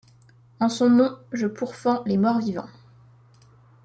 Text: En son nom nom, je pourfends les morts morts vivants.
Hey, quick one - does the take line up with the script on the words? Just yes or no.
no